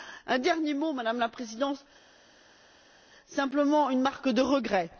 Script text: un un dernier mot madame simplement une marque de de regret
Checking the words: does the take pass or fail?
fail